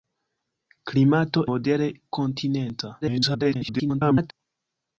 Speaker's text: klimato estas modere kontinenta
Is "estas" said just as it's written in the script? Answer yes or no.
no